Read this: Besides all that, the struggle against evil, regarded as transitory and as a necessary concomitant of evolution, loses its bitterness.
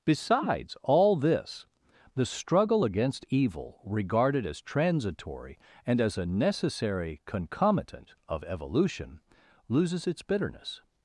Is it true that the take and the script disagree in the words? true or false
true